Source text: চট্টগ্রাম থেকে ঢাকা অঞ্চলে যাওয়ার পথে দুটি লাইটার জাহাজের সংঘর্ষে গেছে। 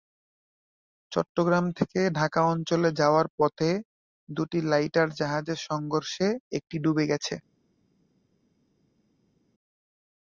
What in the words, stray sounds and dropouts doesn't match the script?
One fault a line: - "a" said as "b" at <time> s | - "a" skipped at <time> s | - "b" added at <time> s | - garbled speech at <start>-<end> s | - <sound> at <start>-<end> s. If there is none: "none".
- "একটি ডুবে" added at 6.6 s